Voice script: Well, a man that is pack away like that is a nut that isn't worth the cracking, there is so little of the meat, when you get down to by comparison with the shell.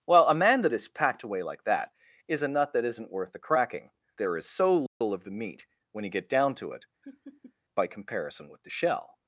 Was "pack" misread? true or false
true